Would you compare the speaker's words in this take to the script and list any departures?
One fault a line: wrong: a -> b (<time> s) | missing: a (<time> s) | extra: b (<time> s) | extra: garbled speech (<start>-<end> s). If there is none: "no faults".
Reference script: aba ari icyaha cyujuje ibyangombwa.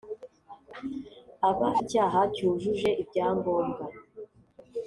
missing: ari (1.7 s)